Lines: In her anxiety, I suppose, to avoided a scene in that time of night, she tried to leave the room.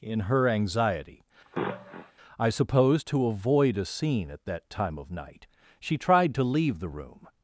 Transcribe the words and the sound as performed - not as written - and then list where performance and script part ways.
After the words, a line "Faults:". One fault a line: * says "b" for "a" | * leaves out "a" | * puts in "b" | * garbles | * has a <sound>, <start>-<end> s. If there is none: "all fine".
In her anxiety, I suppose, to avoid a scene at that time of night, she tried to leave the room.
Faults:
* has a sniff, 1.4-2.1 s
* says "avoid" for "avoided"
* says "at" for "in"